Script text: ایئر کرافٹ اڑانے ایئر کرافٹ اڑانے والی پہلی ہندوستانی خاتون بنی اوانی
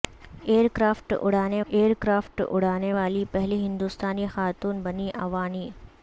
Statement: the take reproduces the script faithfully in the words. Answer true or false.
true